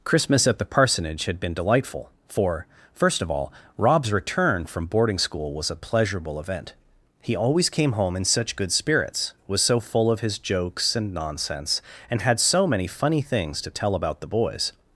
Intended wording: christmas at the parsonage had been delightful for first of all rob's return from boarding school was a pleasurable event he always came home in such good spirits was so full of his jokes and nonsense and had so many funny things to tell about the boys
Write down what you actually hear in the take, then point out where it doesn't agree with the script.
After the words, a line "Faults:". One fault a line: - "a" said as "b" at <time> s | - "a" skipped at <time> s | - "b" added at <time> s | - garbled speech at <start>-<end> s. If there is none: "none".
christmas at the parsonage had been delightful for first of all rob's return from boarding school was a pleasurable event he always came home in such good spirits was so full of his jokes and nonsense and had so many funny things to tell about the boys
Faults:
none